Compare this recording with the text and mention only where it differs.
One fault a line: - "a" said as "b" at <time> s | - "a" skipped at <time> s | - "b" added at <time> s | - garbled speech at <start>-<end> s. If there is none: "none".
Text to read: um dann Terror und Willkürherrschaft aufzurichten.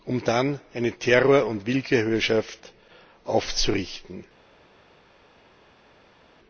- "eine" added at 0.7 s